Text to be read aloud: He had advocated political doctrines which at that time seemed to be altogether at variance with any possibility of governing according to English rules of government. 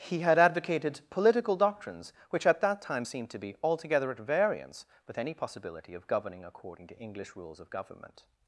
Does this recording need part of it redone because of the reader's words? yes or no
no